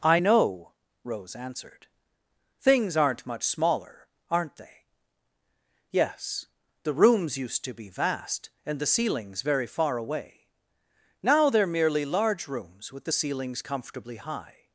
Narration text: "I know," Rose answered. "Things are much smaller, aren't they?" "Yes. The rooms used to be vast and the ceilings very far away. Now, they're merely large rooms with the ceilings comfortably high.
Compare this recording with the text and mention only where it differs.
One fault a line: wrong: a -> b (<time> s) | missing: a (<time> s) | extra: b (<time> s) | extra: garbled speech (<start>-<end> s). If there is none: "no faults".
wrong: are -> aren't (3.0 s)